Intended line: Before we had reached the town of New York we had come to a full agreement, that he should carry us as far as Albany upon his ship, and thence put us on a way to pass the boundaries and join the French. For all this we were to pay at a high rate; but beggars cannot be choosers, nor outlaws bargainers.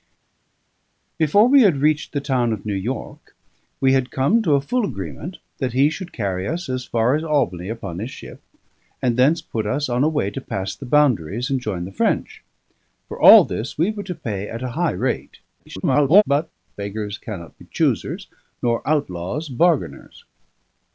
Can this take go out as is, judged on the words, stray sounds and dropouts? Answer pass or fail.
fail